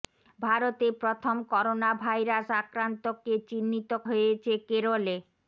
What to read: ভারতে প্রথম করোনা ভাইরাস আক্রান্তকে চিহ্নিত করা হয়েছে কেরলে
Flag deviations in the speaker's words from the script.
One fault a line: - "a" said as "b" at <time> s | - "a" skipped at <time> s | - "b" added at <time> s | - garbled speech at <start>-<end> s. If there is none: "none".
- "করা" skipped at 3.9 s